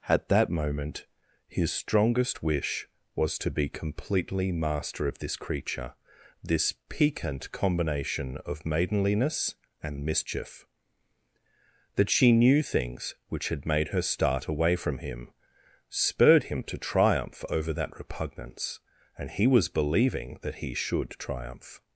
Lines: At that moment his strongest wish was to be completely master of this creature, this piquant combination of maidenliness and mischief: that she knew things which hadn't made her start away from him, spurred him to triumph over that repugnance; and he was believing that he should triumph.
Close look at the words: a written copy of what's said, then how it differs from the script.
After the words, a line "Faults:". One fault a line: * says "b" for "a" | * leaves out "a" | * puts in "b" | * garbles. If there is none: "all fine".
At that moment his strongest wish was to be completely master of this creature, this piquant combination of maidenliness and mischief: that she knew things which had made her start away from him, spurred him to triumph over that repugnance; and he was believing that he should triumph.
Faults:
* says "had" for "hadn't"